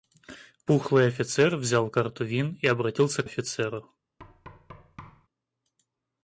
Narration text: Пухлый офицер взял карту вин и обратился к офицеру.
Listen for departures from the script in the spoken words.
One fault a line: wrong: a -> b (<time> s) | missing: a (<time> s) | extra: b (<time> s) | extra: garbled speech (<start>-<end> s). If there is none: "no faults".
no faults